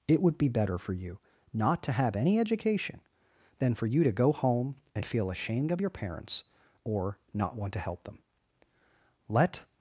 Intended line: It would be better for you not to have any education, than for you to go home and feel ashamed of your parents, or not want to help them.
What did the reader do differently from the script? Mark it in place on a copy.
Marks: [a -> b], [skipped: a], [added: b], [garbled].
It would be better for you not to have any education, than for you to go home and feel ashamed of your parents, or not want to help them. [added: Let]